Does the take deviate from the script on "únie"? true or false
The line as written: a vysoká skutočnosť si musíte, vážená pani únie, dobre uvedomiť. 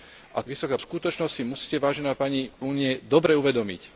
false